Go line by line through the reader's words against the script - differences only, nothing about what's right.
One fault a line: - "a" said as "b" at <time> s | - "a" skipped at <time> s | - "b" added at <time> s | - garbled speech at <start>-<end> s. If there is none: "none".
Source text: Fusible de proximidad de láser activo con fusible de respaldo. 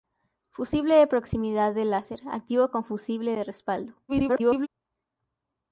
- garbled speech at 4.1-4.7 s